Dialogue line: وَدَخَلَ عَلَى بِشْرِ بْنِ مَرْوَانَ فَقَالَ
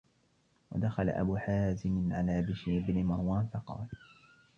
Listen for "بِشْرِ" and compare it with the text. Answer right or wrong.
right